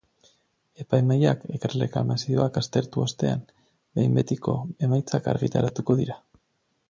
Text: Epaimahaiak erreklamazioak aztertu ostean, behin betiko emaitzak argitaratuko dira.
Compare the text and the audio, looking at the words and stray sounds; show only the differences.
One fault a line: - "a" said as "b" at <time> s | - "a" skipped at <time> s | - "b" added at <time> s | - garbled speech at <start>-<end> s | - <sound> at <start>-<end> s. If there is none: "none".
none